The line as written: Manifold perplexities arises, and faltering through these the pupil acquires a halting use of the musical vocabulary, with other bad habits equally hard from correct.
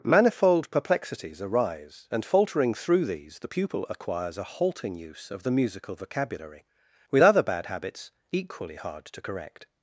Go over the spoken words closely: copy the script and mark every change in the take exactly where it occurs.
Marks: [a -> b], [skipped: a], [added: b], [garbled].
Manifold perplexities [arises, -> arise] and faltering through these the pupil acquires a halting use of the musical vocabulary, with other bad habits equally hard [from -> to] correct.